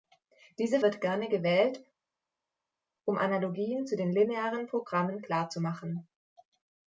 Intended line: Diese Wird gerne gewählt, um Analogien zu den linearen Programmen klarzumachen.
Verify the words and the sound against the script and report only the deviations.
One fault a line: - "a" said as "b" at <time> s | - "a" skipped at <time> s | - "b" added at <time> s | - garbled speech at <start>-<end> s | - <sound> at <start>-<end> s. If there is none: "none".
none